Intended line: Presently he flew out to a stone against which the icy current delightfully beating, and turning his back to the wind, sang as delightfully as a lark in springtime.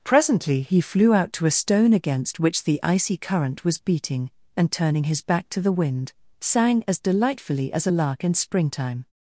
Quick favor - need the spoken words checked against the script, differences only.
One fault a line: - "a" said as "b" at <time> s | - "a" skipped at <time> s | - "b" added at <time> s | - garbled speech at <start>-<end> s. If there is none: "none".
- "delightfully" said as "was" at 3.6 s